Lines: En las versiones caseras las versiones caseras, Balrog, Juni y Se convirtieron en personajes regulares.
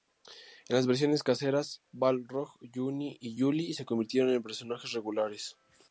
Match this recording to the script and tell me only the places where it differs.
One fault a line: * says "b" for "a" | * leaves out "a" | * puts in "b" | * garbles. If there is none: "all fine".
* leaves out "las versiones caseras"
* puts in "Juli"